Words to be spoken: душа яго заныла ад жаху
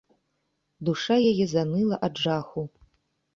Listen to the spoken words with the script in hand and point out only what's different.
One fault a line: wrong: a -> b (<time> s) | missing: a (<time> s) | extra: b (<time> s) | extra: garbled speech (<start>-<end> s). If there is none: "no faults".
wrong: яго -> яе (1.3 s)